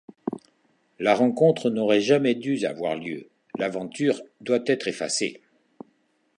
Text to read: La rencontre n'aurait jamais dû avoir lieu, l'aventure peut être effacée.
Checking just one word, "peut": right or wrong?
wrong